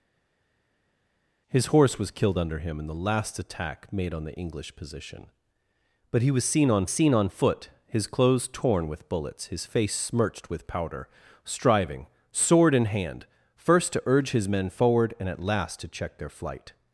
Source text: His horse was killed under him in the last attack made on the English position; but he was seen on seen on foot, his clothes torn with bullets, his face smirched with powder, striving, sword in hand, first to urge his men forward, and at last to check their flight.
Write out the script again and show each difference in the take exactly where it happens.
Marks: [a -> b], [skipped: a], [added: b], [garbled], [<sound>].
His horse was killed under him in the last attack made on the English position; but he was seen on seen on foot, his clothes torn with bullets, his face smirched with powder, striving, sword in hand, first to urge his men forward, and at last to check their flight.